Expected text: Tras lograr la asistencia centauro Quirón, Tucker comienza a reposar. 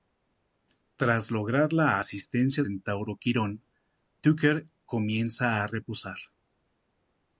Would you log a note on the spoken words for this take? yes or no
no